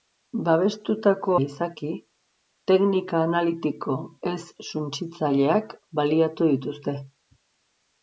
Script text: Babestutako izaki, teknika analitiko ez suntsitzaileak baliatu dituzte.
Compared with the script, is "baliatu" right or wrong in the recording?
right